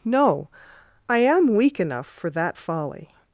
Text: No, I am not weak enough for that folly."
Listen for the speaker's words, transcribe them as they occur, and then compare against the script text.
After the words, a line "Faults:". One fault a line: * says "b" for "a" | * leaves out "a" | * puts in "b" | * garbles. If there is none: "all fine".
No, I am weak enough for that folly."
Faults:
* leaves out "not"